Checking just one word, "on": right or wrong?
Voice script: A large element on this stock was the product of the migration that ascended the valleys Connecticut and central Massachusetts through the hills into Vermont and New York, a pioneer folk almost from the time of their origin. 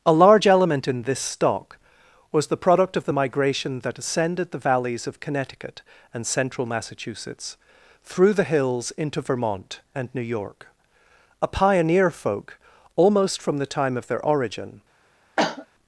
wrong